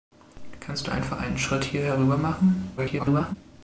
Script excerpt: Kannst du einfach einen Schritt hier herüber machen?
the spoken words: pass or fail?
fail